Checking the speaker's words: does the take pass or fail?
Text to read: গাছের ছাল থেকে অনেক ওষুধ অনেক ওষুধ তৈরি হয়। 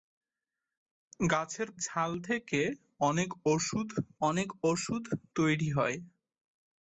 pass